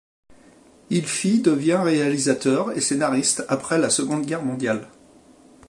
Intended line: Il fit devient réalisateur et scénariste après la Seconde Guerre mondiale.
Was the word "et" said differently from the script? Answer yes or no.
no